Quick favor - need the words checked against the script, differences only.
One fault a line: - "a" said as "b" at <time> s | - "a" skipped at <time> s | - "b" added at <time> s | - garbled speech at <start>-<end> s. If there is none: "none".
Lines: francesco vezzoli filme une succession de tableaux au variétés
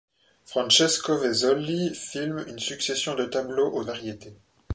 none